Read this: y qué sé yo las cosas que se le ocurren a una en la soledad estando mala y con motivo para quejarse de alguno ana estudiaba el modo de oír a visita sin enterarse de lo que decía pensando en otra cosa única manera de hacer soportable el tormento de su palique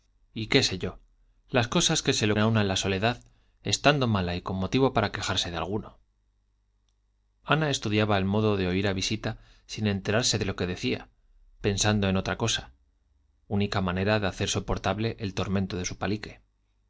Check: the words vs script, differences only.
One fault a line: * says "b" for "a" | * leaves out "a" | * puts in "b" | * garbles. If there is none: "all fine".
* leaves out "ocurren"